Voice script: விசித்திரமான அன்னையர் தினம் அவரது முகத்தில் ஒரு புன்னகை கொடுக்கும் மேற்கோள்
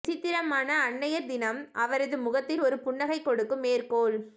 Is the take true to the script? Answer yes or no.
yes